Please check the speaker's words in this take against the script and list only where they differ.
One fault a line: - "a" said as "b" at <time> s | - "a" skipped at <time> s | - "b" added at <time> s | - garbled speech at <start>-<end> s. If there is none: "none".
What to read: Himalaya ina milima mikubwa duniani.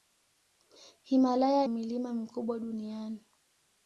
- "ina" skipped at 1.7 s